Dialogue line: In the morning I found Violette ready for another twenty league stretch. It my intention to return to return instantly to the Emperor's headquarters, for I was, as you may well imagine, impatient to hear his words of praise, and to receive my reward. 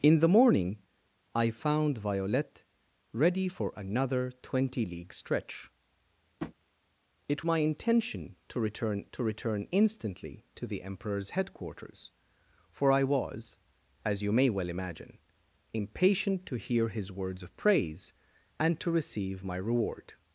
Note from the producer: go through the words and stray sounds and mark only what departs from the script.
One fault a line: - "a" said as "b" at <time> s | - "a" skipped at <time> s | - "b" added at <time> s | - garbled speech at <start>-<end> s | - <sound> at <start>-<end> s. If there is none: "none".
- tap at 6.4-6.5 s